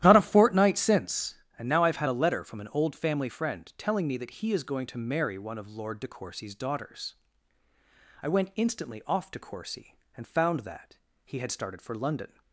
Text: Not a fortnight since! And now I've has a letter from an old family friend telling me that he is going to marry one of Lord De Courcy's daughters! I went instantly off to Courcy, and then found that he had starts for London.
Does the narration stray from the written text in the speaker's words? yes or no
yes